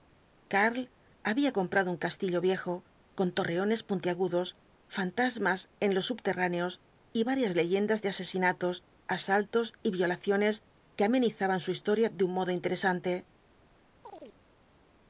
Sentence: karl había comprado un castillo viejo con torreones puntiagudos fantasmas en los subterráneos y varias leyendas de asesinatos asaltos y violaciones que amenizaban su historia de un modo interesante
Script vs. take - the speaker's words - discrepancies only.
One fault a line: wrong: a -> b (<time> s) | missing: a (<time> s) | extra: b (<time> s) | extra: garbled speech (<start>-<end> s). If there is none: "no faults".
no faults